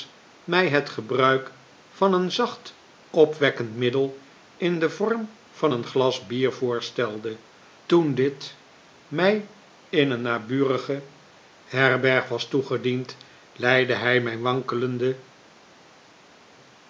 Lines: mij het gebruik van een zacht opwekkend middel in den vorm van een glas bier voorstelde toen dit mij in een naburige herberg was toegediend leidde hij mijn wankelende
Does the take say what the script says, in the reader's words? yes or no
yes